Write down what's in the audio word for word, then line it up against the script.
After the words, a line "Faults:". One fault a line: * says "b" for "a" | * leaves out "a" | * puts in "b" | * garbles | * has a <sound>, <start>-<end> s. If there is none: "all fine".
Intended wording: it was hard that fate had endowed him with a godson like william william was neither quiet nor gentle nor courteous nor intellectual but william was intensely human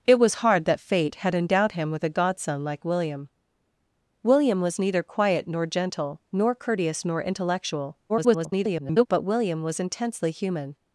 it was hard that fate had endowed him with a godson like william william was neither quiet nor gentle nor courteous nor intellectual [garbled] but william was intensely human
Faults:
* garbles